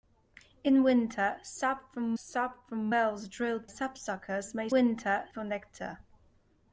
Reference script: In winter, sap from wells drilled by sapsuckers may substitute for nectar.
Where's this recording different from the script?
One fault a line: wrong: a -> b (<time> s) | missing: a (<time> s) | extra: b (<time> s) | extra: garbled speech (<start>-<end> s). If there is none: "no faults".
extra: sap from (2.1 s)
missing: by (3.7 s)
wrong: substitute -> winter (4.7 s)